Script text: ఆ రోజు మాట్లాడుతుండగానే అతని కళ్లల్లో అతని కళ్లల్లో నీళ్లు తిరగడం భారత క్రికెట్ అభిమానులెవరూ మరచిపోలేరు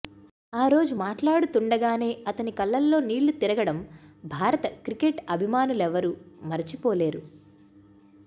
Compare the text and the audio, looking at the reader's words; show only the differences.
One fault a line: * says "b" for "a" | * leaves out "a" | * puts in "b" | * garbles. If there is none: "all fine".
* leaves out "అతని కళ్లల్లో"